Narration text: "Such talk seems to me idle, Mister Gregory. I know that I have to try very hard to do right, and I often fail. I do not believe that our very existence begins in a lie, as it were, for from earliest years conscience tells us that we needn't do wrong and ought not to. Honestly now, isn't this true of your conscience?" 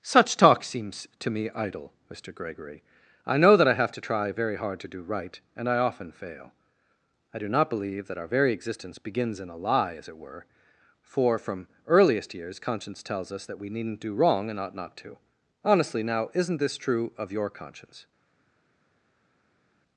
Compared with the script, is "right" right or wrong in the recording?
right